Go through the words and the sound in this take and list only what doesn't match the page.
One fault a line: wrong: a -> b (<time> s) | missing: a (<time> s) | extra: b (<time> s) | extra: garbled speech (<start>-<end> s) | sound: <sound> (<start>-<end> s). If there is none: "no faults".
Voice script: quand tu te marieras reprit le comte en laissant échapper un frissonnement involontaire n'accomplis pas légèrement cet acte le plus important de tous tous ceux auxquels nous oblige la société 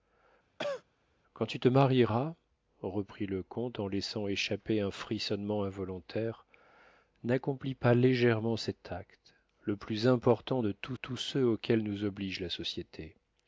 sound: cough (0.6-0.8 s)